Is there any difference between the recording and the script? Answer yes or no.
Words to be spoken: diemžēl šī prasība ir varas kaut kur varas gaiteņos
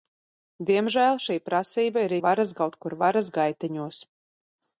no